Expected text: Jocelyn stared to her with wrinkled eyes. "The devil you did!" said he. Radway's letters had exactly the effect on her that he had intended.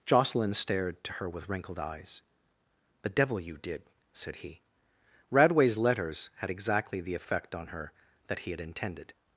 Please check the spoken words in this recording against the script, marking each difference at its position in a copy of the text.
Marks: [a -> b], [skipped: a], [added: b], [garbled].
Jocelyn stared to her with wrinkled eyes. "The devil you did!" said he. Radway's letters had exactly the effect on her that he had intended.